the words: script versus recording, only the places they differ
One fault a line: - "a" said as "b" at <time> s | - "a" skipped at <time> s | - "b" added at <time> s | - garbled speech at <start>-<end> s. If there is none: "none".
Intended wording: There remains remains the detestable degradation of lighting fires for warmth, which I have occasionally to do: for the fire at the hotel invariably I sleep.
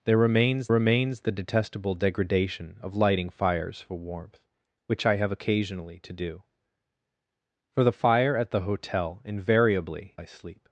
none